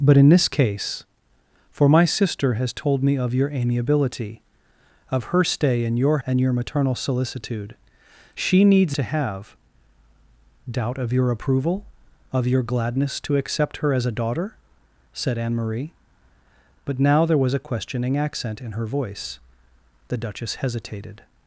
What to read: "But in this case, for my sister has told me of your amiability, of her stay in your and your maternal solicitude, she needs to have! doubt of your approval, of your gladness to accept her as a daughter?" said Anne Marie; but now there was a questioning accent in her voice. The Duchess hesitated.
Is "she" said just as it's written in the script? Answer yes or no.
yes